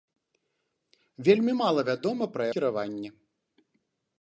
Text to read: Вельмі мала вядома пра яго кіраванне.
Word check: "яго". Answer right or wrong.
wrong